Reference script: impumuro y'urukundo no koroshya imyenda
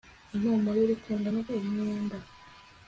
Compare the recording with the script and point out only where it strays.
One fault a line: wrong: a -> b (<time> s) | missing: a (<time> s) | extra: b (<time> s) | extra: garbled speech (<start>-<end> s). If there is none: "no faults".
missing: koroshya (1.4 s)